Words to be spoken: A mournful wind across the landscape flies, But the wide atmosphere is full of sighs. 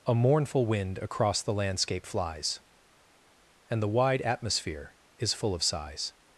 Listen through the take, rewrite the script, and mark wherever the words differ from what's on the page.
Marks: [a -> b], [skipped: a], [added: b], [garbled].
A mournful wind across the landscape flies, [But -> And] the wide atmosphere is full of sighs.